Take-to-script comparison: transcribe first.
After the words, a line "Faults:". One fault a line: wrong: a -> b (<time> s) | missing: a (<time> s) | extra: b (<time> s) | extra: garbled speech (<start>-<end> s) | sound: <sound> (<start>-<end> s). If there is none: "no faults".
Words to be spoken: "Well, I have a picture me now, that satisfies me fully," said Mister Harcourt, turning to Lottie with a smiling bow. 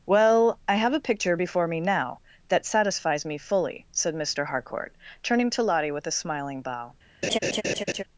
"Well, I have a picture before me now, that satisfies me fully," said Mister Harcourt, turning to Lottie with a smiling bow.
Faults:
extra: before (1.4 s)
sound: laugh (7.2-8.0 s)